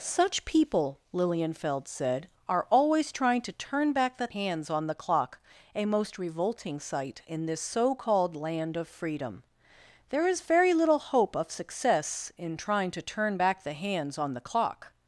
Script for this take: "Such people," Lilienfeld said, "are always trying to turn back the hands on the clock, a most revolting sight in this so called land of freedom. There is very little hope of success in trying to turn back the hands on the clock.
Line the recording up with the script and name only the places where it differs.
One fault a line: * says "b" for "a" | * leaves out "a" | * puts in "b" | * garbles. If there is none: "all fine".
all fine